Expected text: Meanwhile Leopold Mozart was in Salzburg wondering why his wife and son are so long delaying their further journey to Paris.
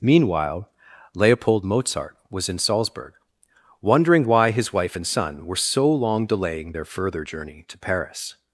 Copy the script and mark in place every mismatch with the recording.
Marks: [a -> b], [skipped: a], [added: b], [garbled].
Meanwhile Leopold Mozart was in Salzburg wondering why his wife and son [are -> were] so long delaying their further journey to Paris.